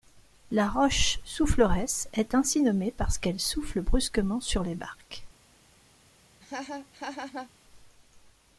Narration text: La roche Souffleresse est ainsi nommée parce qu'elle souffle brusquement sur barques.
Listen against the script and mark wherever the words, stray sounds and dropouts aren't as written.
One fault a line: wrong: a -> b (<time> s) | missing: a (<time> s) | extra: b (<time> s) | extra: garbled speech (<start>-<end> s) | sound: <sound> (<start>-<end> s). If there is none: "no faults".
extra: les (4.6 s)
sound: laugh (6.4-7.5 s)